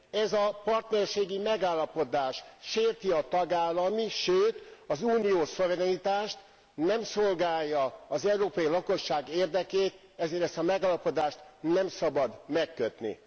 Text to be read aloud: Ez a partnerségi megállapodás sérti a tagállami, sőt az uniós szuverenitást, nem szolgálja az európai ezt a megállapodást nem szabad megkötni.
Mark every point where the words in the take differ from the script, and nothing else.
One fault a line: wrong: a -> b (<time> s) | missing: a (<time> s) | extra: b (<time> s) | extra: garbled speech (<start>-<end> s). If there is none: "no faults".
extra: lakosság érdekét ezért (8.7 s)